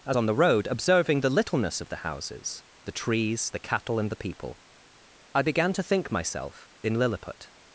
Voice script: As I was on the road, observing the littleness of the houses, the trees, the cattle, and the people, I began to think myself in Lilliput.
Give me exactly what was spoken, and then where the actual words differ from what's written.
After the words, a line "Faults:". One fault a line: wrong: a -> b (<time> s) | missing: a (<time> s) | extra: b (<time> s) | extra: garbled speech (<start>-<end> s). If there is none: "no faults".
As on the road, observing the littleness of the houses, the trees, the cattle, and the people, I began to think myself in Lilliput.
Faults:
missing: I was (0.2 s)